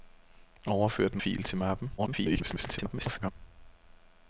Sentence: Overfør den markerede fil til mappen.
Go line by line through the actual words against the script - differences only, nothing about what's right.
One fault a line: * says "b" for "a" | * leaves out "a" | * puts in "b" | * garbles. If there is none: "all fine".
* leaves out "markerede"
* garbles